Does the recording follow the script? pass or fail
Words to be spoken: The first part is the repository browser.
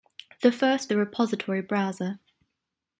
fail